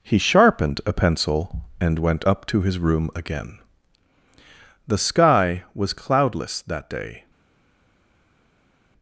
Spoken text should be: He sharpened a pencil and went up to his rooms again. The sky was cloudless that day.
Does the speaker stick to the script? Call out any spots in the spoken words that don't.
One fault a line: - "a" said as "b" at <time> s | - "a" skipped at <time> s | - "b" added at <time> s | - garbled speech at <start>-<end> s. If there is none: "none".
- "rooms" said as "room" at 2.8 s